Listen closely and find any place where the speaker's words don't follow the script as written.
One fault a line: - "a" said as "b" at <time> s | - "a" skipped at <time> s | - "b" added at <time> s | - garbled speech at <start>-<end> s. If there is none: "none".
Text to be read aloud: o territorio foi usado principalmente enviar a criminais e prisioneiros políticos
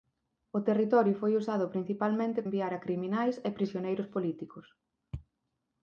none